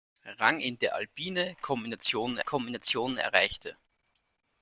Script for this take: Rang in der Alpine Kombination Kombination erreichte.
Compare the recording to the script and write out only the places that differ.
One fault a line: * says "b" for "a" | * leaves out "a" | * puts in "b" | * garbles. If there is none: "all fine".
all fine